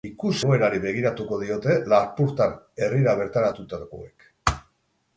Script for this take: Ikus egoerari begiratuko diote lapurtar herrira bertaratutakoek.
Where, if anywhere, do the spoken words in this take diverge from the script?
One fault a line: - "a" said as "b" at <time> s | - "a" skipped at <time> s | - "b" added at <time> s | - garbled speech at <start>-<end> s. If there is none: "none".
none